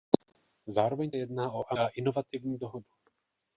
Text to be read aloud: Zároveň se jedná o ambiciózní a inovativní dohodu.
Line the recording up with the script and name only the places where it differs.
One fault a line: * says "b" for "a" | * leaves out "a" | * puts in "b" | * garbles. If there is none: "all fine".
* leaves out "se"
* leaves out "ambiciózní"